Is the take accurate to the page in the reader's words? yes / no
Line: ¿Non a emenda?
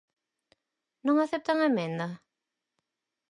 no